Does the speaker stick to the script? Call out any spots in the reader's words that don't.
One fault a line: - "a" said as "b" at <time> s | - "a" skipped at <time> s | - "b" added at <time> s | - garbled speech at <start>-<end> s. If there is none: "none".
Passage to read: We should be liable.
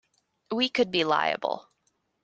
- "should" said as "could" at 0.7 s